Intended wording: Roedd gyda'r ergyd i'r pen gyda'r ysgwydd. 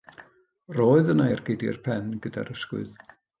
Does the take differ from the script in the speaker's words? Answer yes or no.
yes